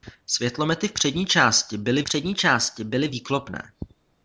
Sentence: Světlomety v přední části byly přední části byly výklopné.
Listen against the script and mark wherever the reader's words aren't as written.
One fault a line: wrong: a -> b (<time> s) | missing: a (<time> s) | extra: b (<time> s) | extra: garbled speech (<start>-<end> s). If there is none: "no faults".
no faults